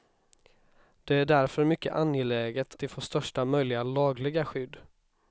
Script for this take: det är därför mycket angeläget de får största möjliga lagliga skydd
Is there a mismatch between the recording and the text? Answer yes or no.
no